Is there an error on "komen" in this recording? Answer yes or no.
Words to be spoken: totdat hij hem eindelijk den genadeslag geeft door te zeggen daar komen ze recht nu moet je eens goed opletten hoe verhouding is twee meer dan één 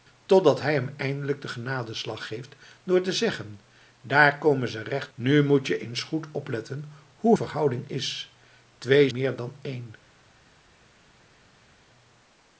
no